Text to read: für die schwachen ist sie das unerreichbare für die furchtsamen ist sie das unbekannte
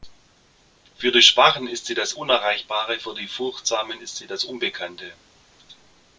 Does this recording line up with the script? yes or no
yes